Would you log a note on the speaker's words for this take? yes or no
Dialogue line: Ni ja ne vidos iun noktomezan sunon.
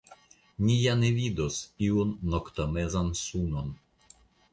no